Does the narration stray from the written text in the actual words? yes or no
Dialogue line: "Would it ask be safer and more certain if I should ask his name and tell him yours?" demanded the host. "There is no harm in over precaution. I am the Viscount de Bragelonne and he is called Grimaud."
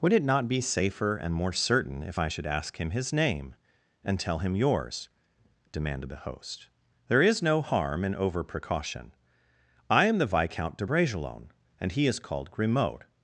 yes